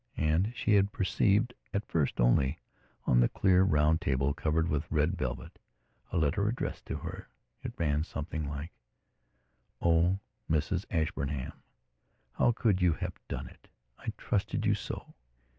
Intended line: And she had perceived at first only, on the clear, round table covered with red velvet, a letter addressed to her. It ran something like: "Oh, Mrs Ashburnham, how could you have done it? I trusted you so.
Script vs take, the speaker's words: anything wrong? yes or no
no